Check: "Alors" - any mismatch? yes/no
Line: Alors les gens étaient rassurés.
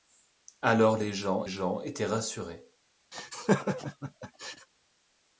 no